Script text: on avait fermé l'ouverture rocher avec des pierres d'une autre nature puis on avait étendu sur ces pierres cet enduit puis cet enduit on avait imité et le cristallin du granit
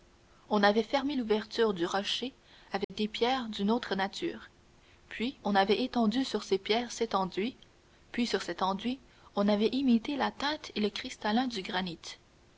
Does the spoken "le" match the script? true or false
true